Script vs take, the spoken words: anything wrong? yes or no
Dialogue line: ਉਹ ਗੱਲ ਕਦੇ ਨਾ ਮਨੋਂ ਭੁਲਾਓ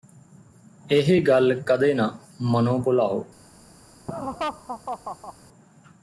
yes